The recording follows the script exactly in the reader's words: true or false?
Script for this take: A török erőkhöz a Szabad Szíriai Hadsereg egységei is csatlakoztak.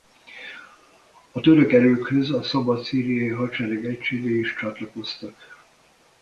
true